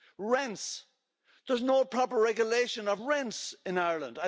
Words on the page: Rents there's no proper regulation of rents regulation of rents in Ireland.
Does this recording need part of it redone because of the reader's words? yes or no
yes